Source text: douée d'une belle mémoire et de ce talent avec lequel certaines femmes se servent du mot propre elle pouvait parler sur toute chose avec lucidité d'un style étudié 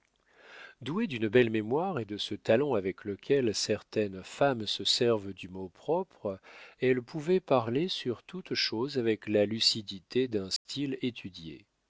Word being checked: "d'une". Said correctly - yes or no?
yes